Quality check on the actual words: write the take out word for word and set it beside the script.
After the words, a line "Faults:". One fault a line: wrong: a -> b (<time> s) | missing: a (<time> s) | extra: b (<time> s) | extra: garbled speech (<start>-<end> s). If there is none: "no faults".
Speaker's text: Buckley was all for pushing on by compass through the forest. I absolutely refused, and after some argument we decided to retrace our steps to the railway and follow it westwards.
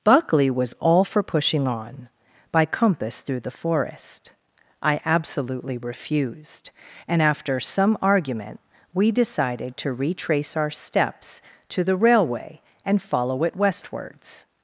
Buckley was all for pushing on by compass through the forest. I absolutely refused, and after some argument we decided to retrace our steps to the railway and follow it westwards.
Faults:
no faults